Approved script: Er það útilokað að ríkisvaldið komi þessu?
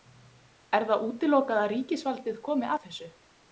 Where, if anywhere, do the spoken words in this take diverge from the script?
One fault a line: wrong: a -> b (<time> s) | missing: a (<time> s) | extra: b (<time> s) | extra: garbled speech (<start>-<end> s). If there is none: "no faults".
extra: að (2.7 s)